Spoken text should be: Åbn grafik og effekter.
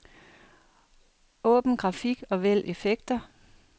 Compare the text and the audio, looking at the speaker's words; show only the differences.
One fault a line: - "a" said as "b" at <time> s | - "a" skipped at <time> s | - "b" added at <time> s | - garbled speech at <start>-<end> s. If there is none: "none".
- "vælg" added at 2.4 s